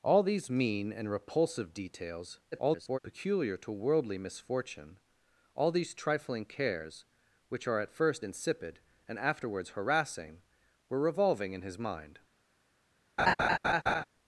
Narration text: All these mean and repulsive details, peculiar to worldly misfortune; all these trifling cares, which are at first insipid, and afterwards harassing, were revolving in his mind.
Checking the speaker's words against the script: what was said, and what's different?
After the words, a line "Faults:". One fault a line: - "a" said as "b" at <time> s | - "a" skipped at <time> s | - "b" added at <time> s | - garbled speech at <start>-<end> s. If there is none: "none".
All these mean and repulsive details, [garbled] peculiar to worldly misfortune; all these trifling cares, which are at first insipid, and afterwards harassing, were revolving in his mind.
Faults:
- garbled speech at 2.5-3.0 s